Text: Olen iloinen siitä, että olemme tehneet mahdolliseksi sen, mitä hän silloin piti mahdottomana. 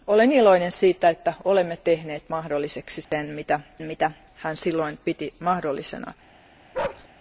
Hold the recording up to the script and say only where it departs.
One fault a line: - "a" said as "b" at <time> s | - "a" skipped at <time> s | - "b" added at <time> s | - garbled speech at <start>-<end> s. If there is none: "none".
- "mitä" added at 3.8 s